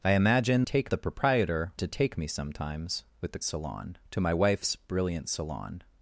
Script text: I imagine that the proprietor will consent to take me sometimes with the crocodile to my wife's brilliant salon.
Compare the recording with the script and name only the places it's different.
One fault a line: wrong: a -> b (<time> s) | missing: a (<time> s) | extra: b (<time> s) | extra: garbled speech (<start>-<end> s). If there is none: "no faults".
wrong: that -> take (0.6 s)
missing: will consent (1.7 s)
wrong: crocodile -> salon (3.4 s)